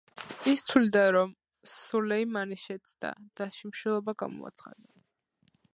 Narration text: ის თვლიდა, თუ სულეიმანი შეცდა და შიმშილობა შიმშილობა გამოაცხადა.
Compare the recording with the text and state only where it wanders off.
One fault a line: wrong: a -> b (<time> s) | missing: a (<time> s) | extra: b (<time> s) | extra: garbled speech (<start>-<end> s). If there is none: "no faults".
wrong: თუ -> რომ (1.2 s)
missing: შიმშილობა (4.2 s)